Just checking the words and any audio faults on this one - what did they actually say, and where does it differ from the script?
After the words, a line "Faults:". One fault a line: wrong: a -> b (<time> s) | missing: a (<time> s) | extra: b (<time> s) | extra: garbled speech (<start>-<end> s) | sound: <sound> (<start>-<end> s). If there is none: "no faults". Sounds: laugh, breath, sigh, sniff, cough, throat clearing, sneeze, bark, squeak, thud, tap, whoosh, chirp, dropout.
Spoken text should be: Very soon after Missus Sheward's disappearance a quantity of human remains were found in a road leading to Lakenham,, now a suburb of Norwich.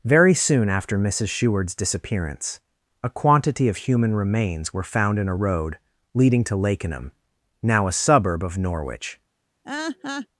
Very soon after Missus Sheward's disappearance a quantity of human remains were found in a road leading to Lakenham,, now a suburb of Norwich.
Faults:
sound: laugh (9.6-10.3 s)